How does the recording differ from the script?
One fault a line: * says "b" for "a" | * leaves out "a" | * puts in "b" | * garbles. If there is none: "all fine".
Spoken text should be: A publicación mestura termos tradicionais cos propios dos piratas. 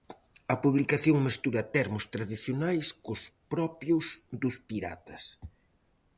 all fine